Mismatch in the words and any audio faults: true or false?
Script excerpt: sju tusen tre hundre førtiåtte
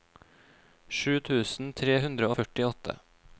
false